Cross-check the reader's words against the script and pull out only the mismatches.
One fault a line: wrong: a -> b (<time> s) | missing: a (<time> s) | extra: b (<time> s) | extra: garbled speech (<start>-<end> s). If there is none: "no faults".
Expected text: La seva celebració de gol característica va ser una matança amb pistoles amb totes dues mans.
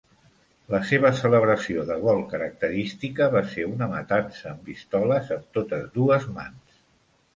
no faults